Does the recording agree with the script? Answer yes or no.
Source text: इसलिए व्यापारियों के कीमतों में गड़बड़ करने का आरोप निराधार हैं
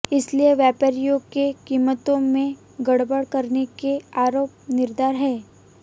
no